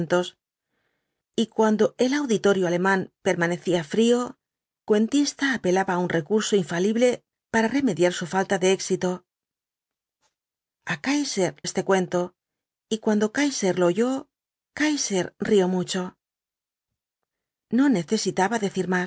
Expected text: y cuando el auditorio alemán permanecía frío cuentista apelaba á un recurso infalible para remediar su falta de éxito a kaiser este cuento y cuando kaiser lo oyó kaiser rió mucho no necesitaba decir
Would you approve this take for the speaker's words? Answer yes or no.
yes